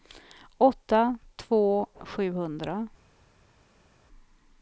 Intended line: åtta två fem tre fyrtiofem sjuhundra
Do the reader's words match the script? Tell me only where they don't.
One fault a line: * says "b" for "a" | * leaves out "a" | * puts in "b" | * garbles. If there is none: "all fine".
* leaves out "fem tre fyrtiofem"